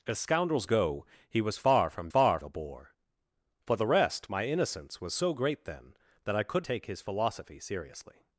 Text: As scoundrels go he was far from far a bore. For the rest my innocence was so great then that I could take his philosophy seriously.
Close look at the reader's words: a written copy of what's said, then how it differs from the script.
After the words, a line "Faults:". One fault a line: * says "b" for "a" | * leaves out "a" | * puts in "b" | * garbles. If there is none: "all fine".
As scoundrels go he was far from far a bore. For the rest my innocence was so great then that I could take his philosophy seriously.
Faults:
all fine